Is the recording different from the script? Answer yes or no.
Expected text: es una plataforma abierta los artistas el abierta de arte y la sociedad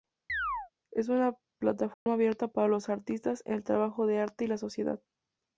yes